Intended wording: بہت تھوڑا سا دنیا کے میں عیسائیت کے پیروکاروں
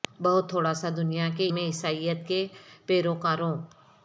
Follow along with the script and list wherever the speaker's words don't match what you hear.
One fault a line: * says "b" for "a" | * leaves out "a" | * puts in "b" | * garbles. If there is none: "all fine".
all fine